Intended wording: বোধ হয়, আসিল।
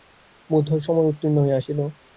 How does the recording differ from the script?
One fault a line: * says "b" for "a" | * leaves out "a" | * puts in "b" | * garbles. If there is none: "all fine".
* puts in "সময় উত্তীর্ণ হইয়া"